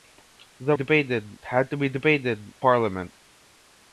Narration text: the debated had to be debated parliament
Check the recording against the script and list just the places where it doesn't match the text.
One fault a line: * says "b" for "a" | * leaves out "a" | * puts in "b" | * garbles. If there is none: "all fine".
all fine